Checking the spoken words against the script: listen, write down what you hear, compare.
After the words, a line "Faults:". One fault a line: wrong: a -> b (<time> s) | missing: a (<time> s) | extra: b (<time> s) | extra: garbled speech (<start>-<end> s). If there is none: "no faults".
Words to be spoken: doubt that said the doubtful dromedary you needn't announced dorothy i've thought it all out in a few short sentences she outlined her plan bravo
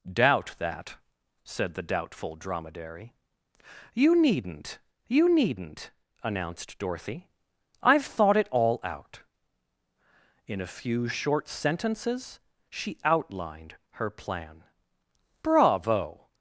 doubt that said the doubtful dromedary you needn't you needn't announced dorothy i've thought it all out in a few short sentences she outlined her plan bravo
Faults:
extra: you needn't (5.1 s)